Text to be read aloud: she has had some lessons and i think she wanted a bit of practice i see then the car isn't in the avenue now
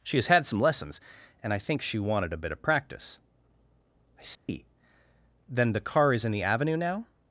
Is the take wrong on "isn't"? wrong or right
wrong